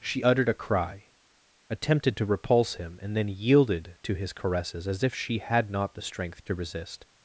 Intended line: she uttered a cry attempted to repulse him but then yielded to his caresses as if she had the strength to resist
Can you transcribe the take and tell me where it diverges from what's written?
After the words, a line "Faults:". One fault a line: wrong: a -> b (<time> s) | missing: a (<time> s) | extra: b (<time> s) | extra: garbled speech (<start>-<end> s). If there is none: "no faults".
she uttered a cry attempted to repulse him and then yielded to his caresses as if she had not the strength to resist
Faults:
wrong: but -> and (3.0 s)
extra: not (5.7 s)